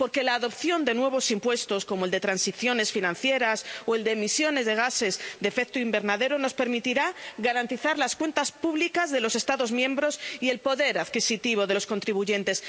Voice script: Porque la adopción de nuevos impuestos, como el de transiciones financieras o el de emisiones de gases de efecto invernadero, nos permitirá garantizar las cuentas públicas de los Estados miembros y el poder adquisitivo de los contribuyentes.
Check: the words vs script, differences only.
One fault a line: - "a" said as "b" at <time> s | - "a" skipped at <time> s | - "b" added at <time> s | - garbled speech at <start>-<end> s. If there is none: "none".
none